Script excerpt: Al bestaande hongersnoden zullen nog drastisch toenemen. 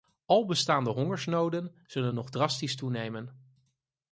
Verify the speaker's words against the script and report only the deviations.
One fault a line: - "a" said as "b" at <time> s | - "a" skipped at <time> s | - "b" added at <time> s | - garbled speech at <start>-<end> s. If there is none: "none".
none